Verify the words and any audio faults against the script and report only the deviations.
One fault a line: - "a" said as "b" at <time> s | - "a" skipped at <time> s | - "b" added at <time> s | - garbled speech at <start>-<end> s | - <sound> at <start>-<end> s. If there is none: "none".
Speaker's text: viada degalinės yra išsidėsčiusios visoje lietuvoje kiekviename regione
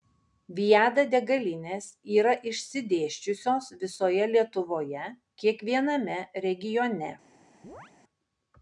- chirp at 7.6-7.9 s